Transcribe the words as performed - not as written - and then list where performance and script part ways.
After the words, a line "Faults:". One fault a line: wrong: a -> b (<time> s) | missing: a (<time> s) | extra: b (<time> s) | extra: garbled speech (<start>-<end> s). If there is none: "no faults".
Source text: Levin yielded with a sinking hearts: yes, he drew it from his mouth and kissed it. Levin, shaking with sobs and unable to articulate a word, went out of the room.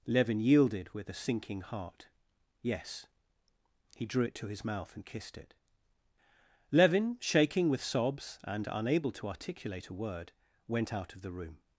Levin yielded with a sinking heart: yes, he drew it to his mouth and kissed it. Levin, shaking with sobs and unable to articulate a word, went out of the room.
Faults:
wrong: hearts -> heart (1.6 s)
wrong: from -> to (4.3 s)